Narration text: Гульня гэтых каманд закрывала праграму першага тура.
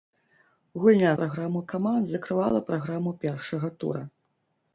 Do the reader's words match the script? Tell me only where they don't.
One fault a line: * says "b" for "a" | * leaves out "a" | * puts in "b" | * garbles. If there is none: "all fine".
* says "праграму" for "гэтых"